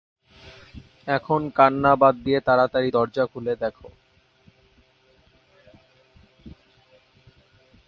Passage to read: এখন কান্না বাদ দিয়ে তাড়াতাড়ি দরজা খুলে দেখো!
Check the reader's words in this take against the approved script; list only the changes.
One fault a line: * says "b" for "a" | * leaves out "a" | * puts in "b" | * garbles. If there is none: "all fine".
all fine